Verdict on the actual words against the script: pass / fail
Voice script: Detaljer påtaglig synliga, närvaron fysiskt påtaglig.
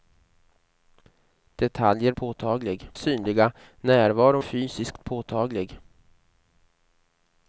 pass